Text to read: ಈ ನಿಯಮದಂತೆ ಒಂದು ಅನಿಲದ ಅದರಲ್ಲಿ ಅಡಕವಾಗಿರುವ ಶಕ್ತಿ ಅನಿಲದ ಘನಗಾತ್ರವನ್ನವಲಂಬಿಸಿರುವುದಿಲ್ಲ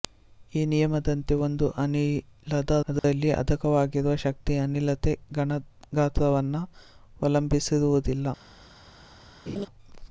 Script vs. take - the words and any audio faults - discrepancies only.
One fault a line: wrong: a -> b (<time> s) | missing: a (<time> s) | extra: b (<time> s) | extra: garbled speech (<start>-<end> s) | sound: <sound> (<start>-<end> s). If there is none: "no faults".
sound: dropout (3.0-3.0 s)
sound: laugh (9.5-9.7 s)